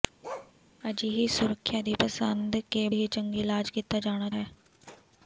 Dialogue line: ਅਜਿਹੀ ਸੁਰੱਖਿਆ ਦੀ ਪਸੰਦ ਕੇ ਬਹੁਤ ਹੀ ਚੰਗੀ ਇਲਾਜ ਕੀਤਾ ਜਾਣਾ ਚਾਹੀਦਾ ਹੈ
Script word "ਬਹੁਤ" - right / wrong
wrong